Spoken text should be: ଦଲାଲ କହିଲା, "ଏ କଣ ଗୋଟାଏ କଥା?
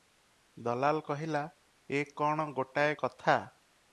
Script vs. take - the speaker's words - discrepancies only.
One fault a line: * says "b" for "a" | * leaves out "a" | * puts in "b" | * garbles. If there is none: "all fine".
all fine